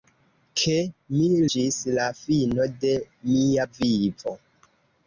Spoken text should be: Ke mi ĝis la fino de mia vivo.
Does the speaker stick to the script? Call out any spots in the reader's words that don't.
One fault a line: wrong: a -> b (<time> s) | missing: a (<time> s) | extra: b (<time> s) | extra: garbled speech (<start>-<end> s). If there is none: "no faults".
no faults